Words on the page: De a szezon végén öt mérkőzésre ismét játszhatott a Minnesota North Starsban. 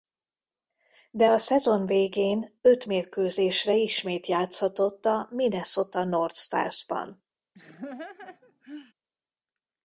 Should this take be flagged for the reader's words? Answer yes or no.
no